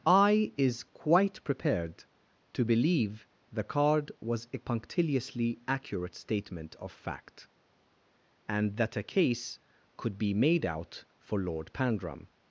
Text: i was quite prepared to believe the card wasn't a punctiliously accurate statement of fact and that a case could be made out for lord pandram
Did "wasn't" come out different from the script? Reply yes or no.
yes